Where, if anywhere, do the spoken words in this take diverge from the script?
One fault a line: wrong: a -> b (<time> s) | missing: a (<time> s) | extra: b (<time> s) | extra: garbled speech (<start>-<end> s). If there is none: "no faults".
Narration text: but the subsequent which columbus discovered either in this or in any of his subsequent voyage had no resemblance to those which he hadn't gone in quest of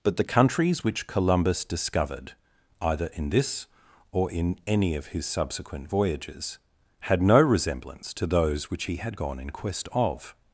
wrong: subsequent -> countries (0.2 s)
wrong: voyage -> voyages (5.9 s)
wrong: hadn't -> had (9.0 s)